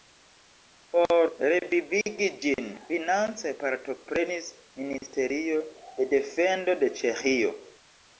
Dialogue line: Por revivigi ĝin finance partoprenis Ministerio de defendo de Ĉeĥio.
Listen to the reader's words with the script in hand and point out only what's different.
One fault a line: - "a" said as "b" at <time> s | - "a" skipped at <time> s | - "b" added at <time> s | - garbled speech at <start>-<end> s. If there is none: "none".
none